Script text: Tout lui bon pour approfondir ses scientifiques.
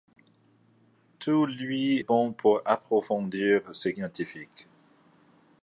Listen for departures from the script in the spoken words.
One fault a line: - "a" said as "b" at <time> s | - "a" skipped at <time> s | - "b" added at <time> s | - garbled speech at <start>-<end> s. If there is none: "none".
none